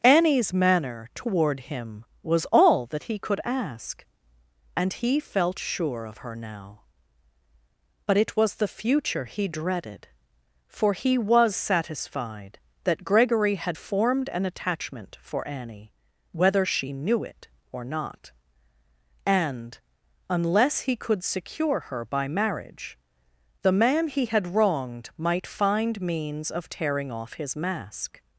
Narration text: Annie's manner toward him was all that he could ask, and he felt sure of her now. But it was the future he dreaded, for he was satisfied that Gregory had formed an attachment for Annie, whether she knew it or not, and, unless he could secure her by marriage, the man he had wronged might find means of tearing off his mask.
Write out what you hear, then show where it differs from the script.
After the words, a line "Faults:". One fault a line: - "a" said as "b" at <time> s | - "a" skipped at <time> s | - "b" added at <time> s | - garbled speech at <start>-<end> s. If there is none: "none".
Annie's manner toward him was all that he could ask, and he felt sure of her now. But it was the future he dreaded, for he was satisfied that Gregory had formed an attachment for Annie, whether she knew it or not, and, unless he could secure her by marriage, the man he had wronged might find means of tearing off his mask.
Faults:
none